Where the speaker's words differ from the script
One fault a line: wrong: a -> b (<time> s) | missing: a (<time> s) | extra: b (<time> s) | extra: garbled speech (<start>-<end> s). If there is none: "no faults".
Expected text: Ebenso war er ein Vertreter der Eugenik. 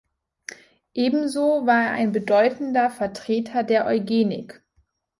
extra: bedeutender (2.1 s)